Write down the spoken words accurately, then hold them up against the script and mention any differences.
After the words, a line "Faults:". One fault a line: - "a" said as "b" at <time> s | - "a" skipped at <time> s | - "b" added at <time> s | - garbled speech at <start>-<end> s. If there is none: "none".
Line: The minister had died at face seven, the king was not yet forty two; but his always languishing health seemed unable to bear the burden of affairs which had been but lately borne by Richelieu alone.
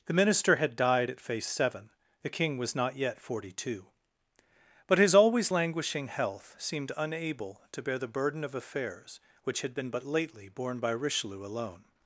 The minister had died at face seven, the king was not yet forty two; but his always languishing health seemed unable to bear the burden of affairs which had been but lately borne by Richelieu alone.
Faults:
none